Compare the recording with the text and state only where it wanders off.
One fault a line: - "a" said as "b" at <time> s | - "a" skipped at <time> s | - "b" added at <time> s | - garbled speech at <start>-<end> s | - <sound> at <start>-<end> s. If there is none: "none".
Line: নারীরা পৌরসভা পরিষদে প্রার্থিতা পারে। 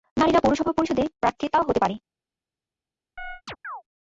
- "হতে" added at 1.6 s
- chirp at 3.2-3.8 s